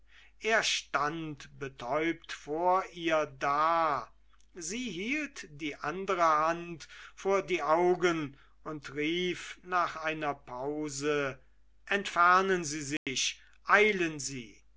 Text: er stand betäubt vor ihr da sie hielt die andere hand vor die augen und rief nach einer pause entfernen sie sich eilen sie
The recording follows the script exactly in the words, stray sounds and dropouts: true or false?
false